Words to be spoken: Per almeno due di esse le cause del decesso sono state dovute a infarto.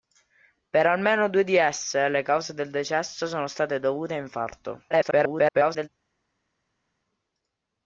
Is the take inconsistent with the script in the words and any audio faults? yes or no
yes